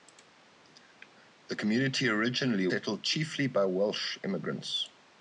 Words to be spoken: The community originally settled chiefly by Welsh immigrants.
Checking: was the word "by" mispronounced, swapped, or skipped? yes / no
no